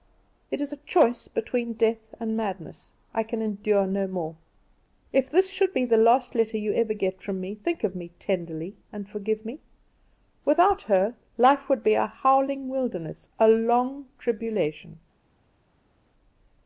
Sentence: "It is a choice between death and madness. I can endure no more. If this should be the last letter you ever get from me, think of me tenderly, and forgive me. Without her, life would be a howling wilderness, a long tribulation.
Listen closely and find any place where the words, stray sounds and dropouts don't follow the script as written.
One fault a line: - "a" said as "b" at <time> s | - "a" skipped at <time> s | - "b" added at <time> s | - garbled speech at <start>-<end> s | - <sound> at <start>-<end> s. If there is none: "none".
none